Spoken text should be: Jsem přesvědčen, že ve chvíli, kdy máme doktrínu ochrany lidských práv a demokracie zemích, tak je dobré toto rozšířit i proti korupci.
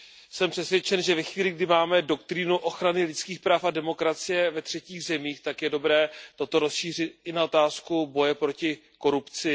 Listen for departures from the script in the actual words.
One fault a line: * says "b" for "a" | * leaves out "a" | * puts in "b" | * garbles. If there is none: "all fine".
* puts in "ve třetích"
* puts in "na otázku boje"